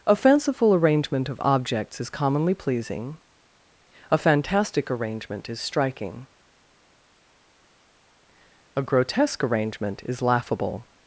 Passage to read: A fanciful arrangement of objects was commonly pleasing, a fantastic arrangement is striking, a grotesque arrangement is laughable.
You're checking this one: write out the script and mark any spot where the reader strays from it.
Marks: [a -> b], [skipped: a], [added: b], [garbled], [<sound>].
A fanciful arrangement of objects [was -> is] commonly pleasing, a fantastic arrangement is striking, a grotesque arrangement is laughable.